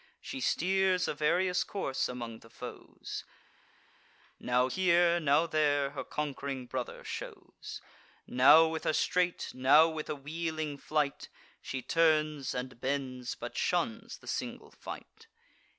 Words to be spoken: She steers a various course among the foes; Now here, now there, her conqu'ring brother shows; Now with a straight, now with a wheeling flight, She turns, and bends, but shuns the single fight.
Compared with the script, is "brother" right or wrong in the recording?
right